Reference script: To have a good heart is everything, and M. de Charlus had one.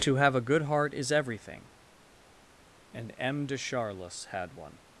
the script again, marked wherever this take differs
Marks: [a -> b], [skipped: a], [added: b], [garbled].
To have a good heart is everything, and M. de Charlus had one.